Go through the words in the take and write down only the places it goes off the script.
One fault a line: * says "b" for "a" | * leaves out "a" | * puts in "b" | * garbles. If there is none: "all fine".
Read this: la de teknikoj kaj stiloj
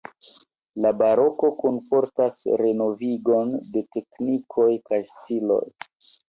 * puts in "baroko kunportas renovigon"